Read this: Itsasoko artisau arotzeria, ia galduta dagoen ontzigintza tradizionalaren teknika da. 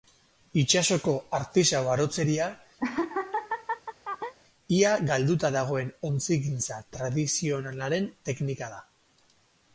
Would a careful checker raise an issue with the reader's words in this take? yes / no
no